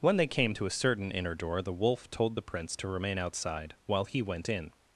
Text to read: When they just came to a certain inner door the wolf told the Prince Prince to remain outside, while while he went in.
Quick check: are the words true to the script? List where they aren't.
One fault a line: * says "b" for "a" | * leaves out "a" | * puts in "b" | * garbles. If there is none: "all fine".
* leaves out "just"
* leaves out "Prince"
* leaves out "while"